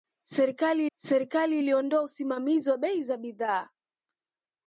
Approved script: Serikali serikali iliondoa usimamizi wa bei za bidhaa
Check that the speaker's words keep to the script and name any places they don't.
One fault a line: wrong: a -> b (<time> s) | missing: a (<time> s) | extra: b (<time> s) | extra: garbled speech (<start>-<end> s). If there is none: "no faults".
no faults